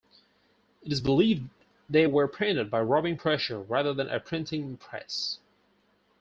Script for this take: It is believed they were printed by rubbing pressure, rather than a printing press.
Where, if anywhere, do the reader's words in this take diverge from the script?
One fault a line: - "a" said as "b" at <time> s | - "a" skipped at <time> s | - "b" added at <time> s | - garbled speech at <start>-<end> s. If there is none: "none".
none